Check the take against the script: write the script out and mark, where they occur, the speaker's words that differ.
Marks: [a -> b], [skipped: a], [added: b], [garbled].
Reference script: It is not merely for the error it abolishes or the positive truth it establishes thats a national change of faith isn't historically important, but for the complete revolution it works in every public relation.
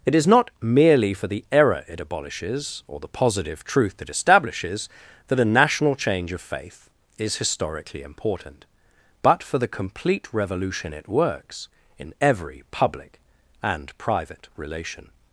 It is not merely for the error it abolishes or the positive truth it establishes [thats -> that] a national change of faith [isn't -> is] historically important, but for the complete revolution it works in every public [added: and private] relation.